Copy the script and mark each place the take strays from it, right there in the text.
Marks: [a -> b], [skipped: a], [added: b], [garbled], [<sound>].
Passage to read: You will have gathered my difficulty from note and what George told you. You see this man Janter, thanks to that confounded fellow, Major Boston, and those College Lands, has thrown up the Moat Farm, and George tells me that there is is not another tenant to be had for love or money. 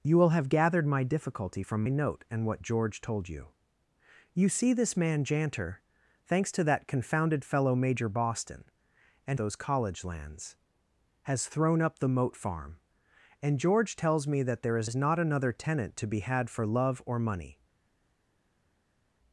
You will have gathered my difficulty from note and what George told you. You see this man Janter, thanks to that confounded fellow, Major Boston, and those College Lands, has thrown up the Moat Farm, and George tells me that there is is not another tenant to be had for love or money.